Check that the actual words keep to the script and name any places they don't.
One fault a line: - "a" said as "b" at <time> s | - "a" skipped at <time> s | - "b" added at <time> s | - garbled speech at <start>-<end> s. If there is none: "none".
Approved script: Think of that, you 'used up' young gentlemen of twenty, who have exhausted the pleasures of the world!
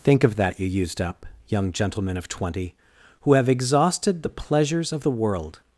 none